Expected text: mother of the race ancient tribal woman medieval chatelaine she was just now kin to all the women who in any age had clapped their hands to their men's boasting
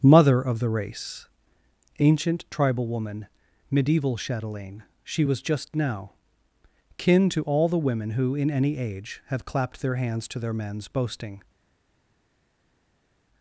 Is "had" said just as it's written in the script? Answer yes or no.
no